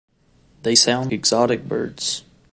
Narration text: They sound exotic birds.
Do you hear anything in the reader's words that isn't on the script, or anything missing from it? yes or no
no